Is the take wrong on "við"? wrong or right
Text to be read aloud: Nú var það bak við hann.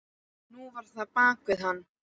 right